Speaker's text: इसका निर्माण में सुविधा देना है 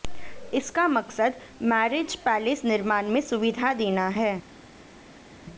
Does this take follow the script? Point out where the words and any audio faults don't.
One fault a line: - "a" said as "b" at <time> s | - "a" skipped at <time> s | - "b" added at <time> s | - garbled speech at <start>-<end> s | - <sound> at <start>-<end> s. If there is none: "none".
- "मकसद मैरिज पैलेस" added at 0.9 s